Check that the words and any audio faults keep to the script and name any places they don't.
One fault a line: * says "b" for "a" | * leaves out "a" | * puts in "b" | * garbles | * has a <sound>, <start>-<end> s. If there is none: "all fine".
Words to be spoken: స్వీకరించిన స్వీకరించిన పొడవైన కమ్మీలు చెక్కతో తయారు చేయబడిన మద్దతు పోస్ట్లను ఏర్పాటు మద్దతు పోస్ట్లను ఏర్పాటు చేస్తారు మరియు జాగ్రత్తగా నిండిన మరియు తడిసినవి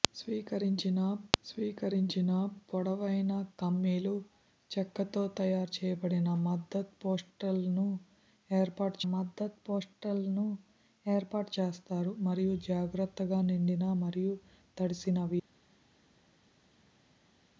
all fine